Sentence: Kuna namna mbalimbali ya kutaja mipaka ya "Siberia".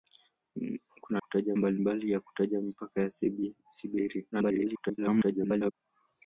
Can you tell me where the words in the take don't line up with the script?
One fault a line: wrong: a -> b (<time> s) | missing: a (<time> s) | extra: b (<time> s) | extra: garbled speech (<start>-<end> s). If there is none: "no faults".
wrong: namna -> kutaja (1.2 s)
extra: garbled speech (4.3-5.7 s)